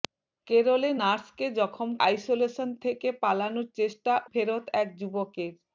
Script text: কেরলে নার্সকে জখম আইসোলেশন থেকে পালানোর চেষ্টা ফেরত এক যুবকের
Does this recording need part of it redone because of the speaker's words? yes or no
no